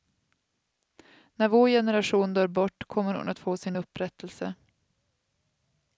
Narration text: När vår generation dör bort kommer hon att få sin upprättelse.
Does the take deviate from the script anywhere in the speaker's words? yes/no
no